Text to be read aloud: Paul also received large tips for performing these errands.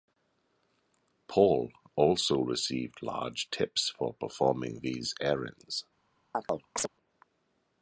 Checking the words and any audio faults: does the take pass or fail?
fail